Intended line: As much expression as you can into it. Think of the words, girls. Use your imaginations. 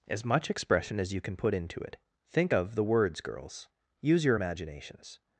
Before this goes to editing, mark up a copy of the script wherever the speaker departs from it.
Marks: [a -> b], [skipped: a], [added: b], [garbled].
As much expression as you can [added: put] into it. Think of the words, girls. Use your imaginations.